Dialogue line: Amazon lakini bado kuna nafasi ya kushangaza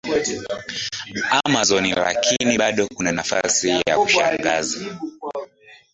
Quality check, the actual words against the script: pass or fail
pass